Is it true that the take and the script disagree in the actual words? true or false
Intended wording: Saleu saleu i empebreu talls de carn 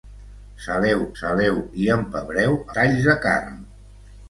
false